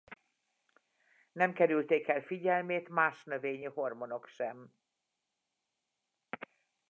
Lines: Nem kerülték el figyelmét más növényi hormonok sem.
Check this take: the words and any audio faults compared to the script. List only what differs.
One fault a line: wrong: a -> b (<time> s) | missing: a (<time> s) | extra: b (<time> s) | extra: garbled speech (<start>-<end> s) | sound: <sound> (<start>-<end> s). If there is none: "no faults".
no faults